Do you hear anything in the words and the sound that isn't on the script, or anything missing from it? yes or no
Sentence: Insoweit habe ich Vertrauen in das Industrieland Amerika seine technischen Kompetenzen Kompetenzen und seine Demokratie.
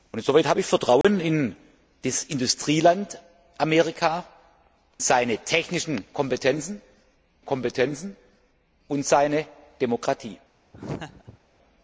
yes